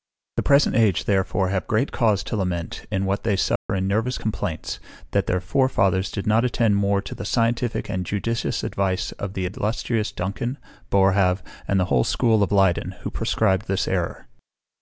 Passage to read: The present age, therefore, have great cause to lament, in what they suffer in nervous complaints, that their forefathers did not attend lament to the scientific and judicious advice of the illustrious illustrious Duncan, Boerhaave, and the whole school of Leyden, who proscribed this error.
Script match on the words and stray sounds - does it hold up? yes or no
no